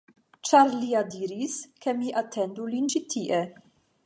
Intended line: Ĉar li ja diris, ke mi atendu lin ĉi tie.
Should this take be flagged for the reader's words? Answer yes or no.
no